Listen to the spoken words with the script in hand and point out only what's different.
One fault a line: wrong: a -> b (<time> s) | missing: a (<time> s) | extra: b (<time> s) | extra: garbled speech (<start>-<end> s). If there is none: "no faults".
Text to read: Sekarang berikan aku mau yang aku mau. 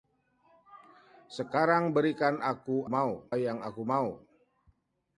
no faults